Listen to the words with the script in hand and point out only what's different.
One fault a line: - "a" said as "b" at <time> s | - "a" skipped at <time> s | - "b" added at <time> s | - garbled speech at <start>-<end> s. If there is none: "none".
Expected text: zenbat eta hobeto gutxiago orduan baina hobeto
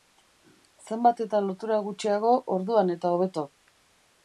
- "hobeto" said as "lotura" at 1.5 s
- "baina" said as "eta" at 3.0 s